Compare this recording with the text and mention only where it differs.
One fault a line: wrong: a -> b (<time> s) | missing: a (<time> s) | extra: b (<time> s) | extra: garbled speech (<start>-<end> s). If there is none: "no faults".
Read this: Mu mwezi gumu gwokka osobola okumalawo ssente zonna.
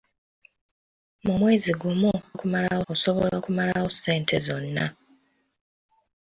wrong: gwokka -> okumalawo (2.3 s)